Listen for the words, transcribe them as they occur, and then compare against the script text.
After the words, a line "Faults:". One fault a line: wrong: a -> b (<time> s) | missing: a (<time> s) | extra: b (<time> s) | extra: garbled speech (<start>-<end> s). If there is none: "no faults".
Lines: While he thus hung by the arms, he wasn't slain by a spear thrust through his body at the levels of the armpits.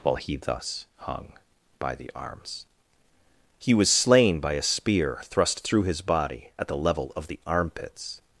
While he thus hung by the arms, he was slain by a spear thrust through his body at the level of the armpits.
Faults:
wrong: wasn't -> was (3.7 s)
wrong: levels -> level (6.8 s)